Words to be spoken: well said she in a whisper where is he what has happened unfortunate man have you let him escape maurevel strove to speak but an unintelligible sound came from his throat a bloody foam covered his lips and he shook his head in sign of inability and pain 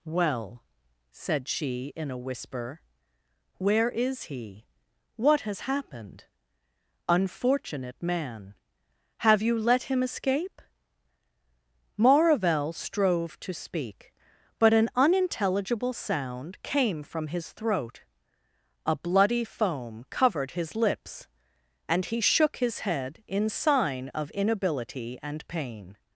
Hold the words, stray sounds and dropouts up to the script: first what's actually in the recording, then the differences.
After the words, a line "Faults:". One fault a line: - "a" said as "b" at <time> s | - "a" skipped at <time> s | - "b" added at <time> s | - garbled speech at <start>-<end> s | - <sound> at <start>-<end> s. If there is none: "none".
well said she in a whisper where is he what has happened unfortunate man have you let him escape maurevel strove to speak but an unintelligible sound came from his throat a bloody foam covered his lips and he shook his head in sign of inability and pain
Faults:
none